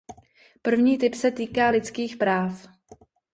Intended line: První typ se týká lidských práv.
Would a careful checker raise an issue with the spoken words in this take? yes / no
no